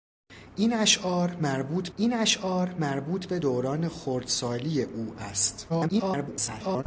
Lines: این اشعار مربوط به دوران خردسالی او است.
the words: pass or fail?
fail